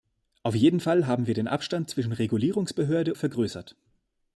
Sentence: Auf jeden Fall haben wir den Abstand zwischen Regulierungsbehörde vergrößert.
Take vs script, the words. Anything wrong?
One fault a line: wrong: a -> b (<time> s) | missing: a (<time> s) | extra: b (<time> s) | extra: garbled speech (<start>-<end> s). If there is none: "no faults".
no faults